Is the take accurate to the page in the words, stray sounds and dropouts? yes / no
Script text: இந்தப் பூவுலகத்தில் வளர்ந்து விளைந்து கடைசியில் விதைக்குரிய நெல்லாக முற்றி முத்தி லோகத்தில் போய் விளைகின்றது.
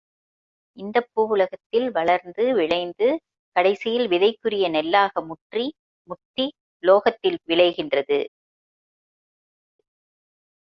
no